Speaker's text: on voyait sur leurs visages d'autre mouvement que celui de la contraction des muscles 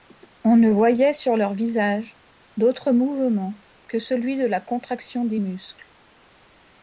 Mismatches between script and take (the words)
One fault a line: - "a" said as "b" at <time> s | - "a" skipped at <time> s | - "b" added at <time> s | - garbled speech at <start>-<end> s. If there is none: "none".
- "ne" added at 0.6 s